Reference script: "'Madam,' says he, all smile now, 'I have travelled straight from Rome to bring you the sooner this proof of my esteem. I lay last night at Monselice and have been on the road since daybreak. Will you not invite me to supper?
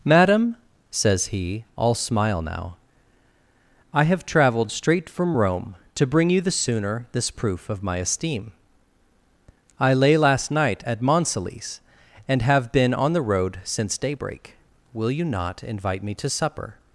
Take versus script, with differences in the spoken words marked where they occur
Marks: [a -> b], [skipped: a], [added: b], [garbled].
"'Madam,' says he, all smile now, 'I have travelled straight from Rome to bring you the sooner this proof of my esteem. I lay last night at Monselice and have been on the road since daybreak. Will you not invite me to supper?